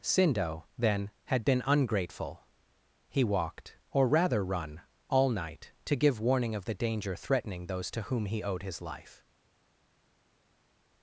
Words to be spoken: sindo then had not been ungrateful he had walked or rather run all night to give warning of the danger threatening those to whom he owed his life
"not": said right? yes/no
no